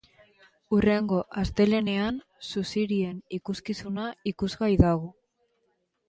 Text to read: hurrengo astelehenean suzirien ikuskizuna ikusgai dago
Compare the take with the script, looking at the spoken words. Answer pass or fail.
pass